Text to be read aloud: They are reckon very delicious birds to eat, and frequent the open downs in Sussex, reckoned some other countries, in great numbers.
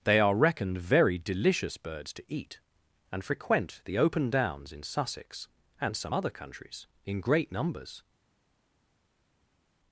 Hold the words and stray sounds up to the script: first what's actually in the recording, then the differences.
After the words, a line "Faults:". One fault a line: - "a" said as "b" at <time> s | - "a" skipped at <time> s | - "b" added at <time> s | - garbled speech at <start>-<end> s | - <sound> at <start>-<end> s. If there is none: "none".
They are reckoned very delicious birds to eat, and frequent the open downs in Sussex, and some other countries, in great numbers.
Faults:
- "reckon" said as "reckoned" at 0.3 s
- "reckoned" said as "and" at 5.8 s